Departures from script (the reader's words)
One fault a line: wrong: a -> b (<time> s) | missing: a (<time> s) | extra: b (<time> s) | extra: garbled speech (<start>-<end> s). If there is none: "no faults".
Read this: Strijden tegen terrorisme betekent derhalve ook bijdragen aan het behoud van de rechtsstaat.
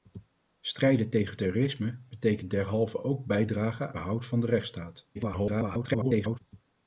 missing: aan het (4.0 s)
extra: garbled speech (5.1-6.4 s)